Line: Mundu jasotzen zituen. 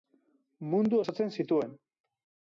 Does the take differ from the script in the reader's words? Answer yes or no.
no